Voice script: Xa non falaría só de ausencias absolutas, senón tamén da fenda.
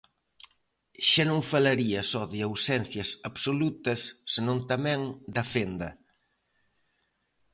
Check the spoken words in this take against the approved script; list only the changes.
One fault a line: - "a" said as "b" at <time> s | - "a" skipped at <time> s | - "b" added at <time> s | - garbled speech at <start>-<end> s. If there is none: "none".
none